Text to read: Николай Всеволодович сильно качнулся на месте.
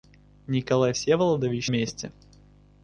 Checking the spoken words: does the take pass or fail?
fail